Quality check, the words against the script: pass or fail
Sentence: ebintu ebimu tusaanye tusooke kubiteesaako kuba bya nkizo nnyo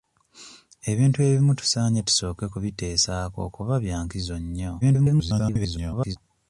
fail